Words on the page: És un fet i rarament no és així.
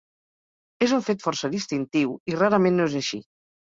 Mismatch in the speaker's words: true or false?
true